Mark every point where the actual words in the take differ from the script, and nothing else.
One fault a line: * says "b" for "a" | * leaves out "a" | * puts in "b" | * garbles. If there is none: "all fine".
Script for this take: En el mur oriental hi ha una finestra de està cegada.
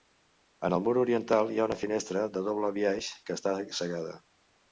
* puts in "doble biaix que"